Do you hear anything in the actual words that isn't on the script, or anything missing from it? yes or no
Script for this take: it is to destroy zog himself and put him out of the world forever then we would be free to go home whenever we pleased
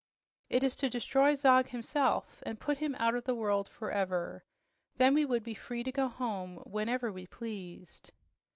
no